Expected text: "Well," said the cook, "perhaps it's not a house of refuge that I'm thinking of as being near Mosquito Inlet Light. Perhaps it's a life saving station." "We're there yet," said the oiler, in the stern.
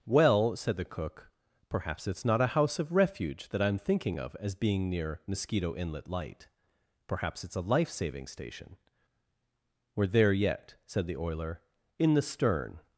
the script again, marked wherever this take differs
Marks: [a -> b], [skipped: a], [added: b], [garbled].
"Well," said the cook, "perhaps it's not a house of refuge that I'm thinking of as being near Mosquito Inlet Light. Perhaps it's a life saving station." "We're there yet," said the oiler, in the stern.